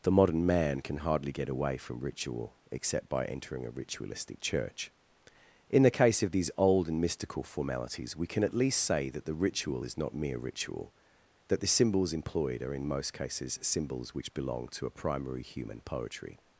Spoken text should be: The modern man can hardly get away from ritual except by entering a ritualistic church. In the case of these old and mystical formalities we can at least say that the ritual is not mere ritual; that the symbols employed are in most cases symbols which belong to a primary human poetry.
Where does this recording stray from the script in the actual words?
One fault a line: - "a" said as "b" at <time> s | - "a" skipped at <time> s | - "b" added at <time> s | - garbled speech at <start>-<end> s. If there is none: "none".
none